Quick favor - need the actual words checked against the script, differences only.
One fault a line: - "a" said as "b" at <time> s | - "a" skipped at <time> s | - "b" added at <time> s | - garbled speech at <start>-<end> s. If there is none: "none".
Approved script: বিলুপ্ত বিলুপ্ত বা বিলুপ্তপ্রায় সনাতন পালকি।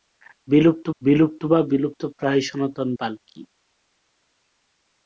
none